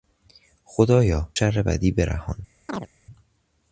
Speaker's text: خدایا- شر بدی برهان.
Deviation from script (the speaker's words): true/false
false